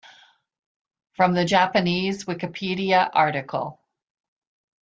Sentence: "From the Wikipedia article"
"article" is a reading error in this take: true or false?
false